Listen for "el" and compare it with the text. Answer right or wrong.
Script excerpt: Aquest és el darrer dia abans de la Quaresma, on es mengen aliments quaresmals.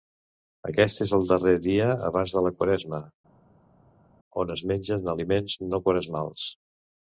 right